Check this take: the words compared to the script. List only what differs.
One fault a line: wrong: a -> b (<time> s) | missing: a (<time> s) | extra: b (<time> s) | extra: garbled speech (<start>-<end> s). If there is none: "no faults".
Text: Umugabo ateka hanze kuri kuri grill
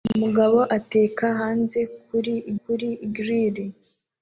no faults